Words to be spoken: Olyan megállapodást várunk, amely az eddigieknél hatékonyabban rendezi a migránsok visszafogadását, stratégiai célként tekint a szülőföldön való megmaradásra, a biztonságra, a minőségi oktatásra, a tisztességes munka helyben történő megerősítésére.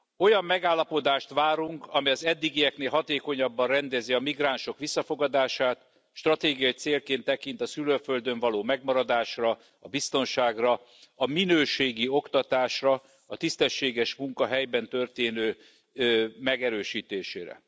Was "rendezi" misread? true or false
false